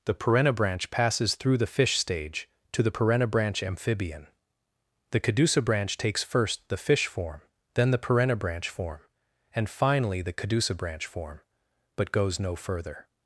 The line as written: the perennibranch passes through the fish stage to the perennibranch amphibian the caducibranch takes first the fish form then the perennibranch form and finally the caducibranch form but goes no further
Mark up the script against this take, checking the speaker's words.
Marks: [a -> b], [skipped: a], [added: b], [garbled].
the perennibranch passes through the fish stage to the perennibranch amphibian the caducibranch takes first the fish form then the perennibranch form and finally the caducibranch form but goes no further